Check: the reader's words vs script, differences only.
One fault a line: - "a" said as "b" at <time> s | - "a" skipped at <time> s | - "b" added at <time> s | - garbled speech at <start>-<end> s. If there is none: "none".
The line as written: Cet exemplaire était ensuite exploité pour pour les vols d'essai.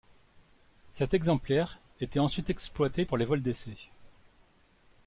- "pour" skipped at 3.2 s